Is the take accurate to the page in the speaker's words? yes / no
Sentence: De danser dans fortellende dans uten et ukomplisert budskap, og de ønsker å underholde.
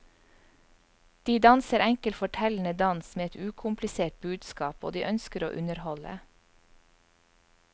no